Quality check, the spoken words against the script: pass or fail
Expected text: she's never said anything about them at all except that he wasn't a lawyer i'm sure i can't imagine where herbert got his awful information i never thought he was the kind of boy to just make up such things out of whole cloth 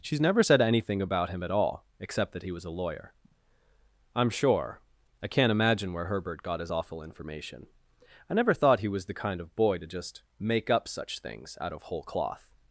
fail